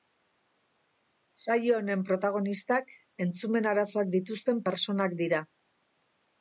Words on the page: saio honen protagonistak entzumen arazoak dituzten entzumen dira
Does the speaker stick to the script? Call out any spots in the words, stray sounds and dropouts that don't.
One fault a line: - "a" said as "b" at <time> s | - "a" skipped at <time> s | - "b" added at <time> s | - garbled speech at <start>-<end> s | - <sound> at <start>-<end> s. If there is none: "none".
- "entzumen" said as "pertsonak" at 4.7 s